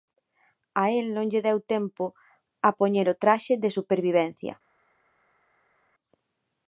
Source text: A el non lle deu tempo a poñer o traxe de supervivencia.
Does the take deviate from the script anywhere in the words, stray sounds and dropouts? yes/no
no